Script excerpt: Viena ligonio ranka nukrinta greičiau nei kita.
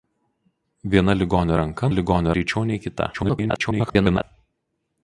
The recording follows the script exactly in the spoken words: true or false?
false